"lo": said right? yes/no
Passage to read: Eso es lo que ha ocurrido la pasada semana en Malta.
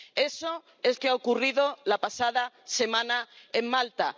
no